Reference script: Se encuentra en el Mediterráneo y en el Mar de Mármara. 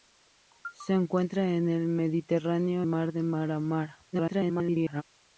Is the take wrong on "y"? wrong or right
wrong